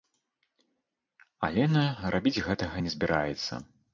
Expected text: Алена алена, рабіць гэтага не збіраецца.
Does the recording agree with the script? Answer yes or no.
no